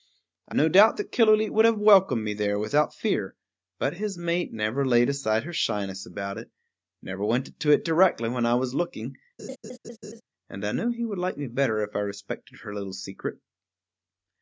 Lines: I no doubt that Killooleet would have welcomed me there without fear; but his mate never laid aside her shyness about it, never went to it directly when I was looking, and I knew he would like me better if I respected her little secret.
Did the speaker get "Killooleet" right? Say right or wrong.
right